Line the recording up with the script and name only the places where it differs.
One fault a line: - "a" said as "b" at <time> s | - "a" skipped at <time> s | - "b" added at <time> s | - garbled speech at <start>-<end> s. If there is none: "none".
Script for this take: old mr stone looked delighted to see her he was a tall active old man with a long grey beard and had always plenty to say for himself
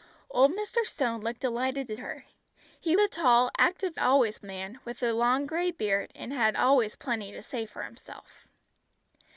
- "see" skipped at 1.9 s
- "was" skipped at 3.0 s
- "old" said as "always" at 4.0 s